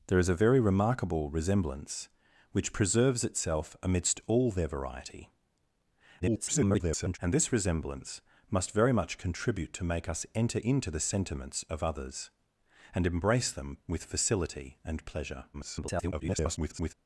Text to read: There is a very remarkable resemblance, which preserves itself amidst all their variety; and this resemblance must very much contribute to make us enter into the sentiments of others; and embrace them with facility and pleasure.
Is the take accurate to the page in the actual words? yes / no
no